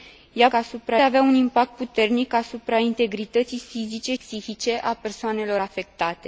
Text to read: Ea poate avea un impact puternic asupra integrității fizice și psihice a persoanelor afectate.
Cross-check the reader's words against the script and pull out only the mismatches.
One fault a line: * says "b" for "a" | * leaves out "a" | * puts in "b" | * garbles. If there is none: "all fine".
* says "asupra" for "poate"
* leaves out "și"